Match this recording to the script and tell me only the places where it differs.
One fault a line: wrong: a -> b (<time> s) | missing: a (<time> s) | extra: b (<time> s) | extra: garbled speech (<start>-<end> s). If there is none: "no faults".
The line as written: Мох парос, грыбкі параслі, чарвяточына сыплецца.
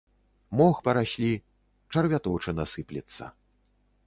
missing: парос грыбкі (0.8 s)